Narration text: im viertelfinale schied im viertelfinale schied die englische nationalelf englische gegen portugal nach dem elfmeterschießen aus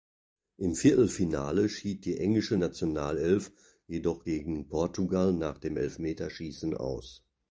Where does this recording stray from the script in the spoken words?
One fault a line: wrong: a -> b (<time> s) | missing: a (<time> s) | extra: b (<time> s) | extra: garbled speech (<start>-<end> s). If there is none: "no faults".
missing: im viertelfinale schied (2.0 s)
wrong: englische -> jedoch (3.9 s)